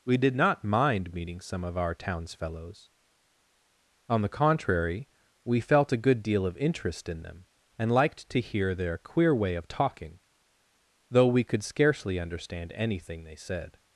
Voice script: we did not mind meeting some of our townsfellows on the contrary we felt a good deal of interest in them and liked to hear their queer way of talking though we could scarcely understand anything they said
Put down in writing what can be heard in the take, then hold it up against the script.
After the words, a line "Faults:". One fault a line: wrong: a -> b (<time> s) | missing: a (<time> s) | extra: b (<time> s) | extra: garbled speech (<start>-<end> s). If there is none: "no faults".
we did not mind meeting some of our townsfellows on the contrary we felt a good deal of interest in them and liked to hear their queer way of talking though we could scarcely understand anything they said
Faults:
no faults